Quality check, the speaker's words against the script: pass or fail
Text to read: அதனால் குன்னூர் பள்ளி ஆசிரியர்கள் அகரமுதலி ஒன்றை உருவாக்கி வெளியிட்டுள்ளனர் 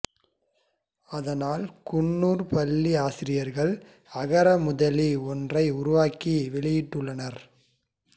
pass